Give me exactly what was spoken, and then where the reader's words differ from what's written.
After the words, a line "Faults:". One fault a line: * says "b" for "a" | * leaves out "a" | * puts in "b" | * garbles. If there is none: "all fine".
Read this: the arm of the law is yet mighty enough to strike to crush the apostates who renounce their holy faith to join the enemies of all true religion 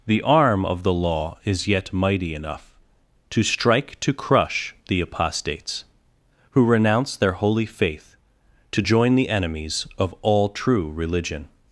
the arm of the law is yet mighty enough to strike to crush the apostates who renounce their holy faith to join the enemies of all true religion
Faults:
all fine